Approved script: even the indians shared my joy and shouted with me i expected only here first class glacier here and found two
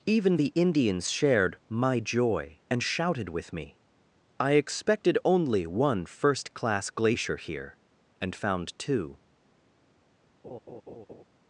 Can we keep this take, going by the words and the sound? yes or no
no